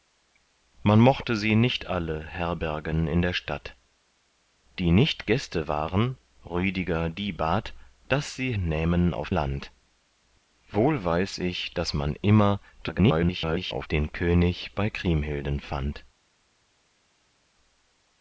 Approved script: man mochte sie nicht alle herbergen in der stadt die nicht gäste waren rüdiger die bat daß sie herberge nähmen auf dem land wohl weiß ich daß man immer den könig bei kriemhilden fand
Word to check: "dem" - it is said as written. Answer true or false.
false